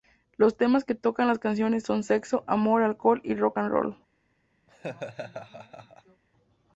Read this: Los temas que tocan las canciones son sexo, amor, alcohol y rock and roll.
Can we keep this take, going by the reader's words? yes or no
yes